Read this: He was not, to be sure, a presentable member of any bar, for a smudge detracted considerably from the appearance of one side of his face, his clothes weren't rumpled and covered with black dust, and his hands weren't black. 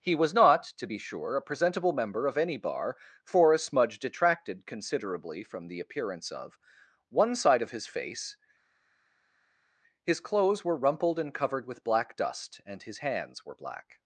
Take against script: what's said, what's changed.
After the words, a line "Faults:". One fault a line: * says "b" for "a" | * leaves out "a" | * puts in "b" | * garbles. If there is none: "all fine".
He was not, to be sure, a presentable member of any bar, for a smudge detracted considerably from the appearance of one side of his face, his clothes were rumpled and covered with black dust, and his hands were black.
Faults:
* says "were" for "weren't"
* says "were" for "weren't"